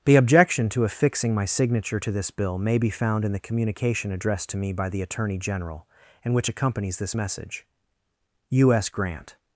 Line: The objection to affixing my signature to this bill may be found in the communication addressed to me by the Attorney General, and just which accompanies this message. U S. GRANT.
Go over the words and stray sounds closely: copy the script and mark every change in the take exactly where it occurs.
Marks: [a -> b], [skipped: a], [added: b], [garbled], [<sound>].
The objection to affixing my signature to this bill may be found in the communication addressed to me by the Attorney General, and [skipped: just] which accompanies this message. U S. GRANT.